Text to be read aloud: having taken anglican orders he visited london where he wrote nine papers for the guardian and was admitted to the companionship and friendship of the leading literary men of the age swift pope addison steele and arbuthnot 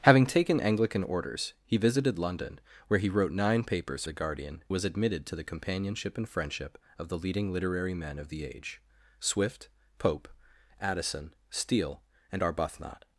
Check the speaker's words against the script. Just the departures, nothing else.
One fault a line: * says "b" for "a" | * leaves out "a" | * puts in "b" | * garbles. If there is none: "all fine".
* leaves out "for"
* leaves out "and"